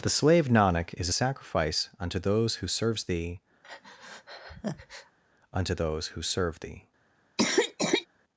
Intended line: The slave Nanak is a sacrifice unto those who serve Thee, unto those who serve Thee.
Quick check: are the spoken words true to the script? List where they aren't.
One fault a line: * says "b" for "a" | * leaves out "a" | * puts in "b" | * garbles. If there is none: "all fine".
* says "serves" for "serve"